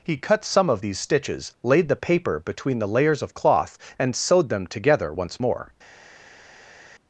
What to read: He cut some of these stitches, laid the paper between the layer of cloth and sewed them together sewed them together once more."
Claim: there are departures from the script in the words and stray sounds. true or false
true